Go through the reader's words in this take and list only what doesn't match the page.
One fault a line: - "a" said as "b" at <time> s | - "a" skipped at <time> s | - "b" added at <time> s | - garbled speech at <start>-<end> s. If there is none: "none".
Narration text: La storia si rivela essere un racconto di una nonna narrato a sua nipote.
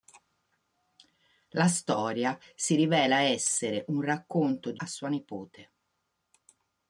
- "una nonna narrato" skipped at 4.8 s